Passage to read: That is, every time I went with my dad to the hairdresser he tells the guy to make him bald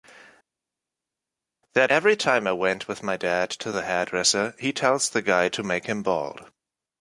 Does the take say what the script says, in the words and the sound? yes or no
no